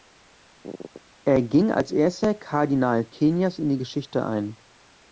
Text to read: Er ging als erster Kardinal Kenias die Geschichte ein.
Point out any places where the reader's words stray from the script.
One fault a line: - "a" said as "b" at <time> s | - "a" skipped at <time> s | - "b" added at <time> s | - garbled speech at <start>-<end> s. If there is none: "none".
- "in" added at 3.6 s